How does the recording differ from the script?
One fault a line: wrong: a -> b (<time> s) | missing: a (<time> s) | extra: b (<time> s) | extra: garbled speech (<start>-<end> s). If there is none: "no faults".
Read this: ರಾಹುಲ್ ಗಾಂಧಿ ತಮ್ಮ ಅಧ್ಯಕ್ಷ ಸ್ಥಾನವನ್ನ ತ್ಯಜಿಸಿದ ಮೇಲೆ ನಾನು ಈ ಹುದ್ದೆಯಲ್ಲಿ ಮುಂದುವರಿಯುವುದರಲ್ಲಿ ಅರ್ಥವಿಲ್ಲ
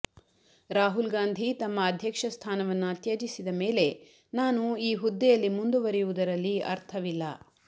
no faults